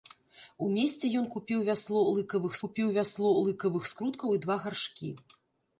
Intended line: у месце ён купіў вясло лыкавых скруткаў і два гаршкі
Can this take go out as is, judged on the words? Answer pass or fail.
fail